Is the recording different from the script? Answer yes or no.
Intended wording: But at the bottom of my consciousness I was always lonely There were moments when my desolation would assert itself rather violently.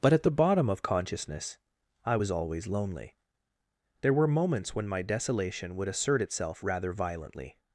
yes